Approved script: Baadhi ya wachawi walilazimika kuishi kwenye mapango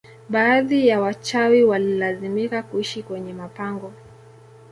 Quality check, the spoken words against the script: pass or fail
pass